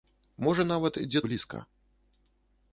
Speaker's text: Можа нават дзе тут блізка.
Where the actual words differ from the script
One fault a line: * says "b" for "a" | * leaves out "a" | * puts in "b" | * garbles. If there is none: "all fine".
* leaves out "тут"